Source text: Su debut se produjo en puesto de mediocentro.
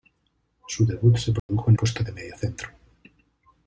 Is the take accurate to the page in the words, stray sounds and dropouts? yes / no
no